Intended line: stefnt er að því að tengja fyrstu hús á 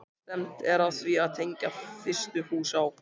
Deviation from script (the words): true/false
false